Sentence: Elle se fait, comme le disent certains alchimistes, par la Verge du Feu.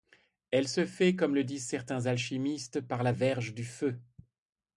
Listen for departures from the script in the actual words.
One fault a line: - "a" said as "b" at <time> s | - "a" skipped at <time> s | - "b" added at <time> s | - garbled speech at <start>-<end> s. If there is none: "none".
none